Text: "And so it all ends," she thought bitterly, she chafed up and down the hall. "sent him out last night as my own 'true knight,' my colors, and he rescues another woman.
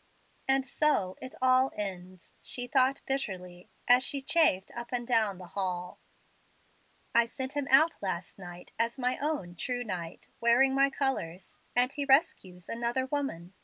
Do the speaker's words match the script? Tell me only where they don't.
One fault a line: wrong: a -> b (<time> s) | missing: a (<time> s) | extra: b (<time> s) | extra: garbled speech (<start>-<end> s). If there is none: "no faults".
extra: as (3.9 s)
extra: I (7.1 s)
extra: wearing (10.4 s)